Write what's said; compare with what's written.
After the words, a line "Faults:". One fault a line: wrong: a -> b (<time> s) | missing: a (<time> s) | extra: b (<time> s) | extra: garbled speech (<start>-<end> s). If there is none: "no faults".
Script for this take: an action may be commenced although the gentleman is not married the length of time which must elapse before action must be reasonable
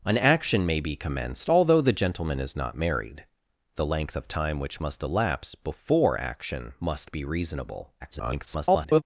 an action may be commenced although the gentleman is not married the length of time which must elapse before action must be reasonable [garbled]
Faults:
extra: garbled speech (8.0-9.0 s)